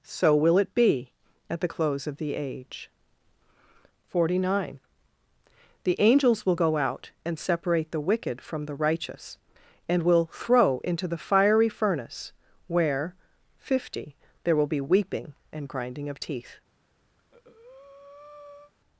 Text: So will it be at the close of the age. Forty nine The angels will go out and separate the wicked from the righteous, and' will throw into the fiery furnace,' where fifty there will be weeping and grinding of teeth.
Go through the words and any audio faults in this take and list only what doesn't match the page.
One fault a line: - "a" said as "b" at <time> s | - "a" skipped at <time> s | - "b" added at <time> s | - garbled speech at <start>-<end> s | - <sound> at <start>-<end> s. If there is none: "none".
- breath at 17.2-18.7 s